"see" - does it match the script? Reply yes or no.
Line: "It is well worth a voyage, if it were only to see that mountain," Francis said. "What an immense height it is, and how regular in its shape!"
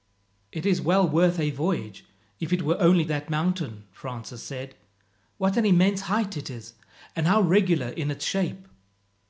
no